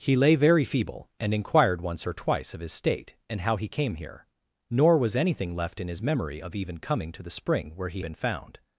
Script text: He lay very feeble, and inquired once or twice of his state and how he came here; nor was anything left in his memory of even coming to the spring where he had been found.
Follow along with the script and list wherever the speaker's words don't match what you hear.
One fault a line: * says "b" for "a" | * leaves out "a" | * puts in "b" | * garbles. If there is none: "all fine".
* leaves out "had"